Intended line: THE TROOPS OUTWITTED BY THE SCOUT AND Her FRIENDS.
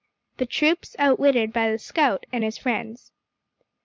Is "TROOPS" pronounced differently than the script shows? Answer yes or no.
no